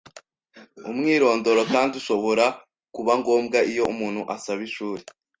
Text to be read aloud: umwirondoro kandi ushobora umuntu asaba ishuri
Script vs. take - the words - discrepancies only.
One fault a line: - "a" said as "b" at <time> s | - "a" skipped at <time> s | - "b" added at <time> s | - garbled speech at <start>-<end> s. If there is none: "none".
- "kuba ngombwa iyo" added at 3.0 s